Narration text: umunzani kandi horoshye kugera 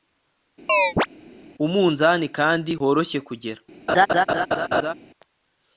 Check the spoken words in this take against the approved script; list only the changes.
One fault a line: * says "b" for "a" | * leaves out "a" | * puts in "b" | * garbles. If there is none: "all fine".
all fine